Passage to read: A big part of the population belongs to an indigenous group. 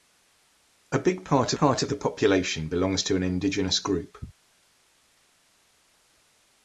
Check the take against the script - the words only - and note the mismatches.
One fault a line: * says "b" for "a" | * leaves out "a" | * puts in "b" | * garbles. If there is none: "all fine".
* puts in "part"